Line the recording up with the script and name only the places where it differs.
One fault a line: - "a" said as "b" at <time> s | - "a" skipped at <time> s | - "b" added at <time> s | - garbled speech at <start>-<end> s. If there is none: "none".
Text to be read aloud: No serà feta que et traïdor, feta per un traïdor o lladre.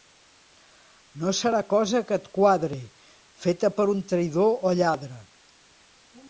- "feta" said as "cosa" at 1.7 s
- "traïdor" said as "quadre" at 2.4 s